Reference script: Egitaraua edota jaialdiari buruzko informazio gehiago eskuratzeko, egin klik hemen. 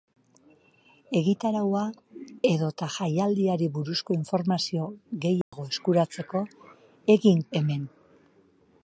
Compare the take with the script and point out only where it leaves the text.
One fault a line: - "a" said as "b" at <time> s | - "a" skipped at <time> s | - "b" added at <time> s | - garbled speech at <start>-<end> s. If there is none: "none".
- "klik" skipped at 7.4 s